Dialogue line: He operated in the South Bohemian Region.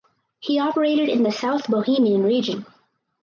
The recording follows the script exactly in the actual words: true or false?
true